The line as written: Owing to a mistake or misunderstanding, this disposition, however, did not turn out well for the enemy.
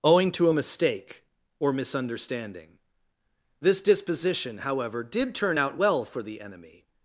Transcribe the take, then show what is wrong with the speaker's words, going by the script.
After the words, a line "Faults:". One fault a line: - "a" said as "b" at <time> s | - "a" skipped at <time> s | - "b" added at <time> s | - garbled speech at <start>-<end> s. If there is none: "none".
Owing to a mistake or misunderstanding, this disposition, however, did turn out well for the enemy.
Faults:
- "not" skipped at 5.3 s